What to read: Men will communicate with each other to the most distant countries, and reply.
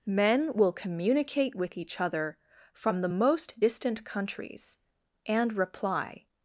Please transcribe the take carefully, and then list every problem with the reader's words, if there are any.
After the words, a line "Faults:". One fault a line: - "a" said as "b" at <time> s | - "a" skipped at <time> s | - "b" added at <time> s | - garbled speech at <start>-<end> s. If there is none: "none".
Men will communicate with each other from the most distant countries, and reply.
Faults:
- "to" said as "from" at 2.7 s